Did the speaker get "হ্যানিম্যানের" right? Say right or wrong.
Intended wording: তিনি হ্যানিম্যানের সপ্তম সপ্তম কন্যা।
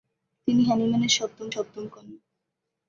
right